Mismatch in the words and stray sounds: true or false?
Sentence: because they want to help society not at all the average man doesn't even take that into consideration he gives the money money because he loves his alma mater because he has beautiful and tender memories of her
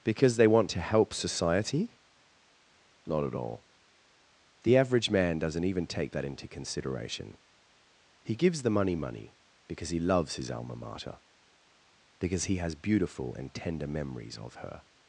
false